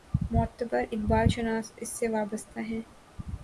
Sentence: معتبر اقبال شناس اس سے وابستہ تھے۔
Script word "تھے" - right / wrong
wrong